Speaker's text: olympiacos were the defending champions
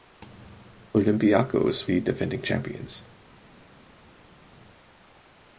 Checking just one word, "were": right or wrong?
wrong